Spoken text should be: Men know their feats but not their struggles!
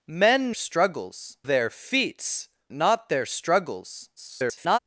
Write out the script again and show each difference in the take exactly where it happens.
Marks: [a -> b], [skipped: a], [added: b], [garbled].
Men [know -> struggles] their feats [skipped: but] not their struggles! [garbled]